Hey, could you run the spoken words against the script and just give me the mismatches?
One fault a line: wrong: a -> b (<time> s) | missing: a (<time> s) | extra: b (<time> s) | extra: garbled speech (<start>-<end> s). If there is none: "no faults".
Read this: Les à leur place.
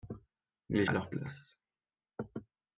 no faults